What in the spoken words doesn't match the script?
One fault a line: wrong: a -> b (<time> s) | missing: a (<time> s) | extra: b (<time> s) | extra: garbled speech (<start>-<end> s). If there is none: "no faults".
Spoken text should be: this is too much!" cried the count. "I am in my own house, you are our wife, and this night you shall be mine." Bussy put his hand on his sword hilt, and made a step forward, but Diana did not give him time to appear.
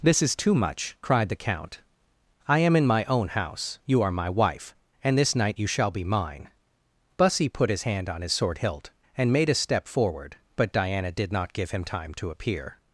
wrong: our -> my (4.1 s)